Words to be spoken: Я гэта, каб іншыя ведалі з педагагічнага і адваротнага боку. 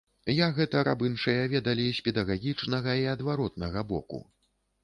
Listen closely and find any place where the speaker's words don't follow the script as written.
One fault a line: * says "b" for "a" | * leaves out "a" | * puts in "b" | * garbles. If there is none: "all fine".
all fine